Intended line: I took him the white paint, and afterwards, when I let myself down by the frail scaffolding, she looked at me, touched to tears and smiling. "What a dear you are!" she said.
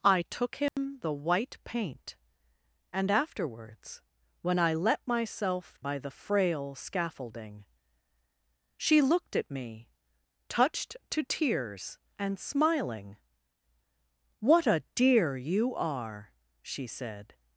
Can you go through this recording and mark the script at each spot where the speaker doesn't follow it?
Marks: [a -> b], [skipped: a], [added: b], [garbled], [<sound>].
I took him [dropout] the white paint, and afterwards, when I let myself [skipped: down] by the frail scaffolding, she looked at me, touched to tears and smiling. "What a dear you are!" she said.